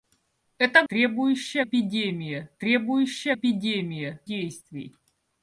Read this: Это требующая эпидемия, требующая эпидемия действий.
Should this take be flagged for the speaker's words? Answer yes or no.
no